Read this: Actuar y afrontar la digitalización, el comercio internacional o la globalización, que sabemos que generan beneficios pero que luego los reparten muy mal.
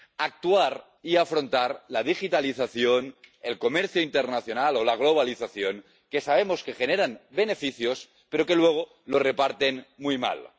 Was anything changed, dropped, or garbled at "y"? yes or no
no